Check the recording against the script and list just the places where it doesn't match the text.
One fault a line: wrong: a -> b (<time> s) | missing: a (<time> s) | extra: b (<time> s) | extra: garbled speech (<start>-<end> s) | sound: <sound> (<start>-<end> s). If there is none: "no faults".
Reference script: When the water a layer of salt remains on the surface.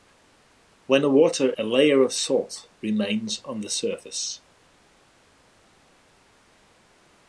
no faults